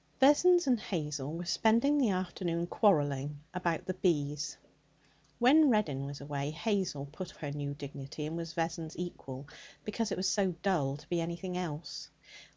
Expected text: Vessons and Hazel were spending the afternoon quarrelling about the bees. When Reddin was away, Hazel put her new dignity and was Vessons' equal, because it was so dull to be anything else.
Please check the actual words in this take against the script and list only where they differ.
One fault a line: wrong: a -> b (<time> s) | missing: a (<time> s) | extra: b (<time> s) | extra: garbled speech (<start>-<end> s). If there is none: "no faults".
no faults